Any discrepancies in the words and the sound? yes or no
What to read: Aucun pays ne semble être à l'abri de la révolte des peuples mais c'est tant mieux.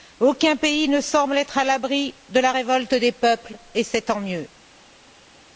yes